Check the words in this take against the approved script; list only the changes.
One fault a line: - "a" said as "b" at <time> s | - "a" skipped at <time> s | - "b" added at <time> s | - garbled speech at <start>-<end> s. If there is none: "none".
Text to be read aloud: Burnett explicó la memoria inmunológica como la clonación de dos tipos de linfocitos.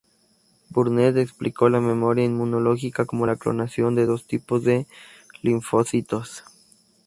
none